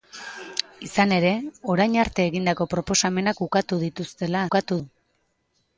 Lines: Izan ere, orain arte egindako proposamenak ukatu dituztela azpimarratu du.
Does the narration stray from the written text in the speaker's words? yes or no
yes